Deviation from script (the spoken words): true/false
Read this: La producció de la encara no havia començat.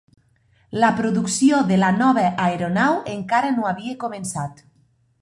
true